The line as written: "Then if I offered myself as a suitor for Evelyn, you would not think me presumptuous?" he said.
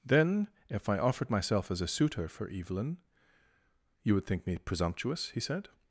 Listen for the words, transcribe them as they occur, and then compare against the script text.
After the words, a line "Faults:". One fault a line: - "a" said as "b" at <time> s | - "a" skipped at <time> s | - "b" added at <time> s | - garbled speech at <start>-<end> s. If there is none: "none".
"Then if I offered myself as a suitor for Evelyn, you would think me presumptuous?" he said.
Faults:
- "not" skipped at 4.2 s